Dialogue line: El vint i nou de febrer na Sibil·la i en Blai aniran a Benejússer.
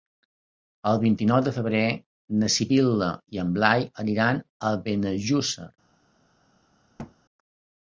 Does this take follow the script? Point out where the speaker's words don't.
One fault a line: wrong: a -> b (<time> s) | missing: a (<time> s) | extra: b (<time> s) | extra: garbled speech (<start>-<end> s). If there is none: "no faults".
no faults